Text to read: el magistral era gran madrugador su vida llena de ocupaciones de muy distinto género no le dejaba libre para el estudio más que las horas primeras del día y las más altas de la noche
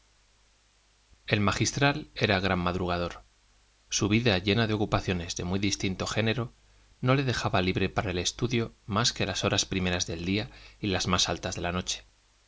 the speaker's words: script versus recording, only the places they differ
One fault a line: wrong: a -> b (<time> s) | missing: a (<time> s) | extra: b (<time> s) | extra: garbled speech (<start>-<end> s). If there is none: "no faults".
no faults